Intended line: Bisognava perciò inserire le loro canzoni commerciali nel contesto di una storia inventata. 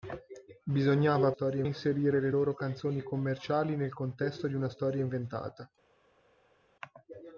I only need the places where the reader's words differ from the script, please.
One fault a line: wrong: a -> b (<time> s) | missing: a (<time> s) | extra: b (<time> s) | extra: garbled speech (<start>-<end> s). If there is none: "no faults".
wrong: perciò -> storia (1.3 s)